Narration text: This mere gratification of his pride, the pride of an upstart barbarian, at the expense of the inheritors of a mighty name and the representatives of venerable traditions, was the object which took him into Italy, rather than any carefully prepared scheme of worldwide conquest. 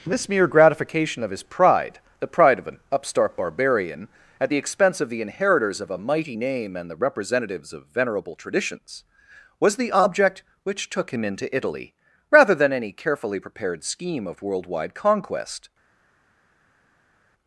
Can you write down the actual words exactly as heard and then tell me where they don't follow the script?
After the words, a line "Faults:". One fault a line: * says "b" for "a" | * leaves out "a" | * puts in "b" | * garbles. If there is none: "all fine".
This mere gratification of his pride, the pride of an upstart barbarian, at the expense of the inheritors of a mighty name and the representatives of venerable traditions, was the object which took him into Italy, rather than any carefully prepared scheme of worldwide conquest.
Faults:
all fine